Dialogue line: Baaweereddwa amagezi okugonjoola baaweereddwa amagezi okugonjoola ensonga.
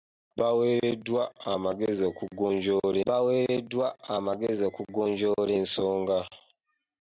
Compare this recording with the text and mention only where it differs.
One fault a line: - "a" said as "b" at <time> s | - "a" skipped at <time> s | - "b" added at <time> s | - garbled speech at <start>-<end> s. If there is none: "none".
none